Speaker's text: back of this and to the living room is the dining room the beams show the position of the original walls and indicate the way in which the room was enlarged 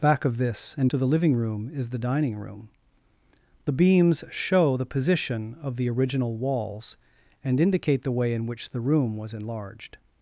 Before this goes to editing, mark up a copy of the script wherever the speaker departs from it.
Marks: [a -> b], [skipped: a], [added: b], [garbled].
back of this and to the living room is the dining room the beams show the position of the original walls and indicate the way in which the room was enlarged